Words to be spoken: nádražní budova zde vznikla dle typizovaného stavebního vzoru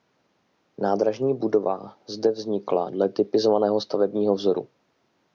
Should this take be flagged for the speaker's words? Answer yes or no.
no